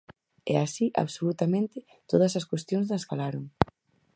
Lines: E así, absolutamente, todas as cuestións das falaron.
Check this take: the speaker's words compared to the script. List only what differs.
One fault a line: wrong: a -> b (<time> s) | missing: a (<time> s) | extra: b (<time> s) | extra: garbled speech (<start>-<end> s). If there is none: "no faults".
no faults